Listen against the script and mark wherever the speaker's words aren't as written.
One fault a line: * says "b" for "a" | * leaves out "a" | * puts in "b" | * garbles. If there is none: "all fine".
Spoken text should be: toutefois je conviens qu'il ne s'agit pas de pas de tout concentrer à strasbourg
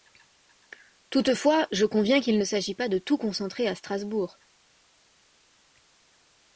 * leaves out "pas de"